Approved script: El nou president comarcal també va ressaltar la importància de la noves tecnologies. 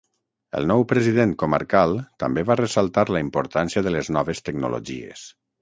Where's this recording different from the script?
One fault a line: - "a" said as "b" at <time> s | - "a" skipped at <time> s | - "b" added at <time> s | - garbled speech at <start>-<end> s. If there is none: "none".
- "la" said as "les" at 4.0 s